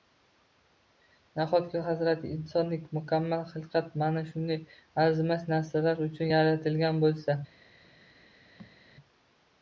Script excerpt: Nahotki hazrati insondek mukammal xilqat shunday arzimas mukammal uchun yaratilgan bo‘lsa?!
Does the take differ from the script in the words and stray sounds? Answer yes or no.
yes